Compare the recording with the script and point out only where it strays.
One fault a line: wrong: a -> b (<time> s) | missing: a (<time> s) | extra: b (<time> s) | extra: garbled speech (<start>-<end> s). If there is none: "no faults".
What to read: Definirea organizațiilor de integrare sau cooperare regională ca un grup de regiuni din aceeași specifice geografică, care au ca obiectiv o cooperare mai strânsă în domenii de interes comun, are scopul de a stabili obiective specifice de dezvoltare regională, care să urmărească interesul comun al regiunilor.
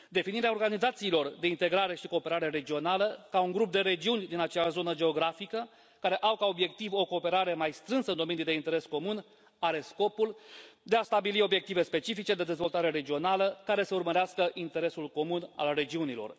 wrong: sau -> și (1.9 s)
wrong: specifice -> zonă (4.7 s)